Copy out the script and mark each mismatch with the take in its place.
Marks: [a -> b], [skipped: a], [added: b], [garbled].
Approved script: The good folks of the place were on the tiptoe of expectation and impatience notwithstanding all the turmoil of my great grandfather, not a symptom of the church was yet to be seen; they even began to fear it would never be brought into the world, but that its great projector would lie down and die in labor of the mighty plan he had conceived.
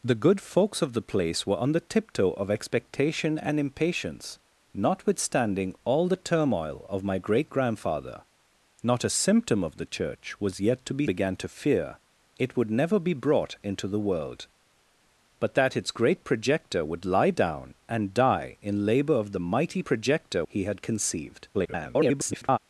The good folks of the place were on the tiptoe of expectation and impatience notwithstanding all the turmoil of my great grandfather, not a symptom of the church was yet to be [skipped: seen; they even] began to fear it would never be brought into the world, but that its great projector would lie down and die in labor of the mighty [plan -> projector] he had conceived. [garbled]